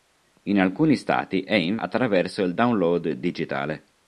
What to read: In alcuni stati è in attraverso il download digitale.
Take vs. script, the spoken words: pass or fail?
pass